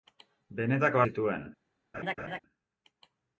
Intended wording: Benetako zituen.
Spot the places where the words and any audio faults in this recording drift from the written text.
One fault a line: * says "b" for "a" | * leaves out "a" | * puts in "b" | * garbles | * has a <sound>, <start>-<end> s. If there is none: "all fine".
* has a laugh, 1.9-2.4 s